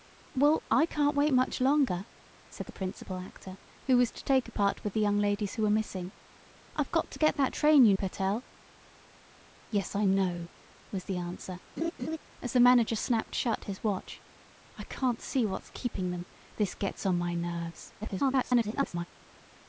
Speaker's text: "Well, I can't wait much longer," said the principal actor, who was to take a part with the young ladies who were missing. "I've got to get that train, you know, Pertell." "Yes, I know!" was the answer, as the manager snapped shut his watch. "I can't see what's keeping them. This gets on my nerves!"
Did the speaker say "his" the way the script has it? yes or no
yes